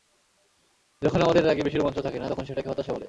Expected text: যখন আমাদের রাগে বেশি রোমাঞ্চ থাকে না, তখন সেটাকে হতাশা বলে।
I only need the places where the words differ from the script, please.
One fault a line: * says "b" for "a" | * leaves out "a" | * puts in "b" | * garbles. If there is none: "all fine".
all fine